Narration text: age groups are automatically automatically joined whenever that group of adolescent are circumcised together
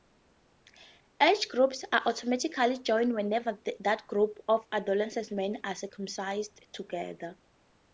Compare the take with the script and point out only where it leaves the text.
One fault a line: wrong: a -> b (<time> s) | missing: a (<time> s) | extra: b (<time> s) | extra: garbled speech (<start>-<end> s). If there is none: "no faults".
missing: automatically (2.8 s)
extra: men (5.3 s)